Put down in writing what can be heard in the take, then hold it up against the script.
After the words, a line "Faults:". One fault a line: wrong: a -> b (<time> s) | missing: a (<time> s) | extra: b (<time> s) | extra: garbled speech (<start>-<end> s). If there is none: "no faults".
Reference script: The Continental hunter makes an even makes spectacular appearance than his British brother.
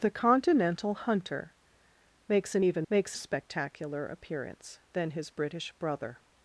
The Continental hunter makes an even makes spectacular appearance than his British brother.
Faults:
no faults